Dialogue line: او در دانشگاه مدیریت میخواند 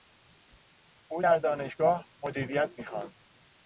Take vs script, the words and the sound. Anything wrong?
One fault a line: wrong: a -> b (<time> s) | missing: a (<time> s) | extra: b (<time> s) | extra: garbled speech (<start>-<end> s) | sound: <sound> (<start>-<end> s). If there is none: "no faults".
no faults